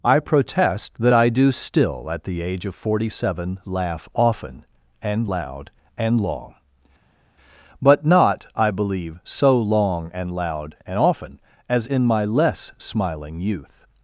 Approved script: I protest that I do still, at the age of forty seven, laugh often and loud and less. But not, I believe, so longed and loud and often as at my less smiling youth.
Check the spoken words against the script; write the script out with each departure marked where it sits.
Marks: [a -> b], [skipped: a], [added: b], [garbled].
I protest that I do still, at the age of forty seven, laugh often and loud and [less. -> long] But not, I believe, so [longed -> long] and loud and often as [at -> in] my less smiling youth.